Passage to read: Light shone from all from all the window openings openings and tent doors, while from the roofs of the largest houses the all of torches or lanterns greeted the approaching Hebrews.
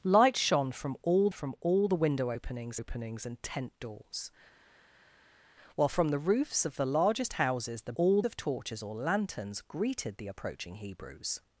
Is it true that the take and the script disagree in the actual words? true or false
false